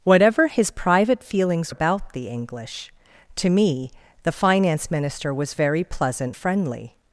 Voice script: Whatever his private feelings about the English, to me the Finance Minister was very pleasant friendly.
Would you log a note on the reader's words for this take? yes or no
no